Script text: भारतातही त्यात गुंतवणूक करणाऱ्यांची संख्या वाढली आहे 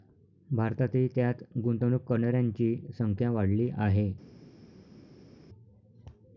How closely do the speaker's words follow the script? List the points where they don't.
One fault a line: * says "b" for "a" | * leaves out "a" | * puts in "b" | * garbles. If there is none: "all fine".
all fine